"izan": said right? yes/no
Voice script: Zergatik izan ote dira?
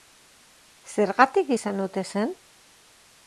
yes